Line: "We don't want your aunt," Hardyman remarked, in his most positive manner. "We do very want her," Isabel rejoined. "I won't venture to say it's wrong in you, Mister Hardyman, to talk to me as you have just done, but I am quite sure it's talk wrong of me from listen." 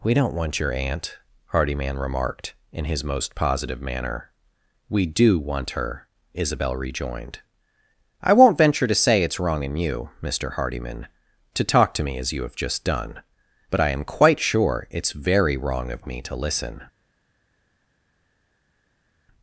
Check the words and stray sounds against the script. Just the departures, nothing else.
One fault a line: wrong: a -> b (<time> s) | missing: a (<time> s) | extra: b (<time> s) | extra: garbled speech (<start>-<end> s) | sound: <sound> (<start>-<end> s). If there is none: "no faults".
missing: very (5.4 s)
wrong: talk -> very (15.1 s)
wrong: from -> to (16.2 s)